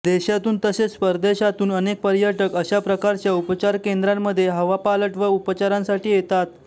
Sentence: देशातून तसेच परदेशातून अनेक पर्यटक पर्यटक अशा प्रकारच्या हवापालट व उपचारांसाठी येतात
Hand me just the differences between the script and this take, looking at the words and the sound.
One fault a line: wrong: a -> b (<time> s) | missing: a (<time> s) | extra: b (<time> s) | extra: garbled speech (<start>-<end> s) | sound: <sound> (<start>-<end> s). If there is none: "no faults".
missing: पर्यटक (2.5 s)
extra: उपचार केंद्रांमध्ये (3.3 s)